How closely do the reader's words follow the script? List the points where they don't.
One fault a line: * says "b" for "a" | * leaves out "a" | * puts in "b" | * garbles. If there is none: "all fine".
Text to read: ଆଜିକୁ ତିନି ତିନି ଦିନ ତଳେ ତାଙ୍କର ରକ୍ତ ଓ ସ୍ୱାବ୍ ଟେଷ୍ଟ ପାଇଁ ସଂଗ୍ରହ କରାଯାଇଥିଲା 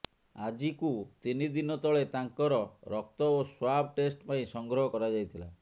* leaves out "ତିନି"